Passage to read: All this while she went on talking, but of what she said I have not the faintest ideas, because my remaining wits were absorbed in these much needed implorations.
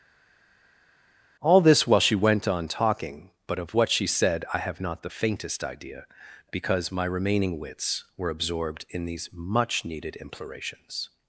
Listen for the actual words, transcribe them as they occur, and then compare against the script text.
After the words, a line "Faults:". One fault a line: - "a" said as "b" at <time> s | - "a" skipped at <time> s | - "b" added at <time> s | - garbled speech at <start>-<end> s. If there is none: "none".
All this while she went on talking, but of what she said I have not the faintest idea, because my remaining wits were absorbed in these much needed implorations.
Faults:
- "ideas" said as "idea" at 5.6 s